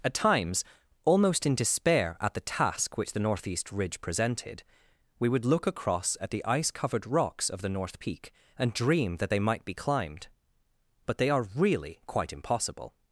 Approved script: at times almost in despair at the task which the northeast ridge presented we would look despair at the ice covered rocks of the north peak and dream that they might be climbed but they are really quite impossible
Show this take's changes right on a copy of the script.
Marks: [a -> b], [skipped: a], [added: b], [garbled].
at times almost in despair at the task which the northeast ridge presented we would look [despair -> across] at the ice covered rocks of the north peak and dream that they might be climbed but they are really quite impossible